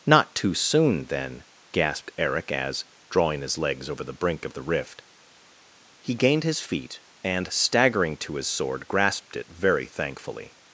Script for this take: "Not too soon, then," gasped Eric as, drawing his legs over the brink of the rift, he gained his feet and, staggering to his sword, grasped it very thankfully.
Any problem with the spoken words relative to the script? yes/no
no